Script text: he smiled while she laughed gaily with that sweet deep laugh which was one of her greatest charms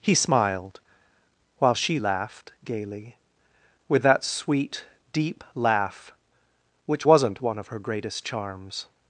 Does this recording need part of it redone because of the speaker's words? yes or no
yes